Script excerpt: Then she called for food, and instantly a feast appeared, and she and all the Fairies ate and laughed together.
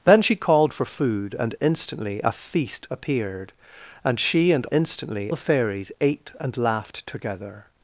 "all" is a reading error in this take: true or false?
true